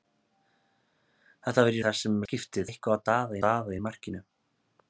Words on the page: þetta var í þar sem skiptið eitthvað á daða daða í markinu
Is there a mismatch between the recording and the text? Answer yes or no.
no